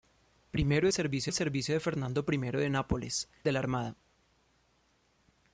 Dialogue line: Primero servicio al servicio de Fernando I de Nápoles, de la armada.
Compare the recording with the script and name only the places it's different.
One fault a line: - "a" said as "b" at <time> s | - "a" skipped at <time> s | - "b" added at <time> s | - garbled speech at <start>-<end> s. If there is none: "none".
none